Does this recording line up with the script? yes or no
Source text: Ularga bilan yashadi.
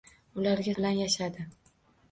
yes